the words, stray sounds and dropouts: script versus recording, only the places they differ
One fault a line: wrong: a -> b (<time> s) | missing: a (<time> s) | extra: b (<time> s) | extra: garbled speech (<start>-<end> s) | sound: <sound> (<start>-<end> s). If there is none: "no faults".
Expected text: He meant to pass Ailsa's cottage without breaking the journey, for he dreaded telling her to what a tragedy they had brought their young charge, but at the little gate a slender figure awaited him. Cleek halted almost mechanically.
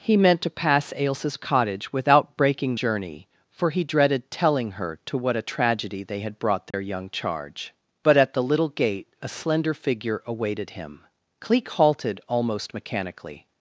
missing: the (2.8 s)
sound: dropout (6.7-6.7 s)